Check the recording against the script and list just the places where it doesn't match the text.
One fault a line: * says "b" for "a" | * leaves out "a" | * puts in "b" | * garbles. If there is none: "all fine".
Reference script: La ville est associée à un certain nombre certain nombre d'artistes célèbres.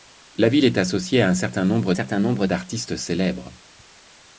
all fine